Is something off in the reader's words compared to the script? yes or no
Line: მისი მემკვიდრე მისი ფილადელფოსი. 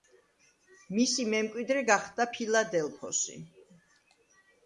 yes